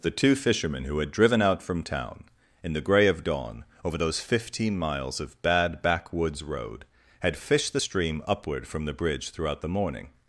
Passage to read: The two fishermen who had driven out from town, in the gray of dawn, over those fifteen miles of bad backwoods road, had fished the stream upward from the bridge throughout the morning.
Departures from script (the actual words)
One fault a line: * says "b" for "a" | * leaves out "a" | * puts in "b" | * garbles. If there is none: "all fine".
all fine